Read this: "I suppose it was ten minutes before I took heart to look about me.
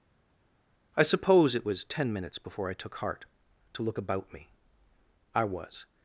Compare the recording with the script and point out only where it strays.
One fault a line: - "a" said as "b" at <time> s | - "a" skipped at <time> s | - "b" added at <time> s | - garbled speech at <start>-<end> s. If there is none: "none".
- "I was" added at 5.3 s